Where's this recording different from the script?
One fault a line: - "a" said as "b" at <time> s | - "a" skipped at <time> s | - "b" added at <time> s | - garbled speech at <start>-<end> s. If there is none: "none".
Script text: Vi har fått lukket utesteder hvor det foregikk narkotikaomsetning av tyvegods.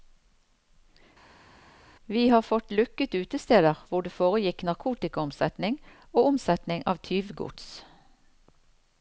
- "og omsetning" added at 6.1 s